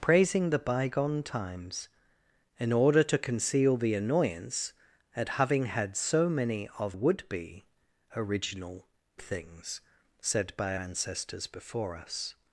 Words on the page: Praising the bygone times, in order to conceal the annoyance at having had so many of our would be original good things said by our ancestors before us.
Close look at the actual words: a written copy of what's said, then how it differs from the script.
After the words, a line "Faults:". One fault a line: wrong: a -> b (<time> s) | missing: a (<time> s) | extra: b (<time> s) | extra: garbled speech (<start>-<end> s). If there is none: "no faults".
Praising the bygone times, in order to conceal the annoyance at having had so many of would be original things said by ancestors before us.
Faults:
missing: our (7.0 s)
missing: good (8.9 s)
missing: our (10.8 s)